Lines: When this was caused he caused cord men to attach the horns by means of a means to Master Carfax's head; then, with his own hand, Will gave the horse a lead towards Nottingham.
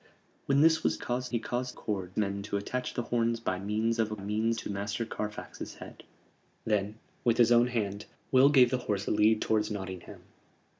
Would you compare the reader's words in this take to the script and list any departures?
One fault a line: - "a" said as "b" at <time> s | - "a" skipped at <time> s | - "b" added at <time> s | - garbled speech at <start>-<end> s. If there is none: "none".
none